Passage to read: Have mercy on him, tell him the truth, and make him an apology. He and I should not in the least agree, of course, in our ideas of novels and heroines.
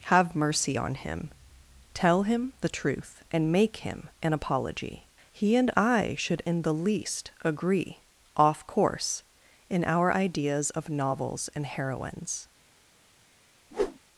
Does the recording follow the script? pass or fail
fail